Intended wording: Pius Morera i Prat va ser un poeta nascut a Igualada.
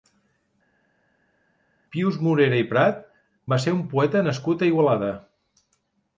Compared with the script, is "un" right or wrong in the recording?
right